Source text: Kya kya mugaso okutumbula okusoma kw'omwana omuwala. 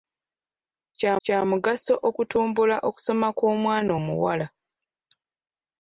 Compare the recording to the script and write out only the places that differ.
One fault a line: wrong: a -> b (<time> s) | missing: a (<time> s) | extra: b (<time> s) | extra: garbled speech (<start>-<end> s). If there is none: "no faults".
no faults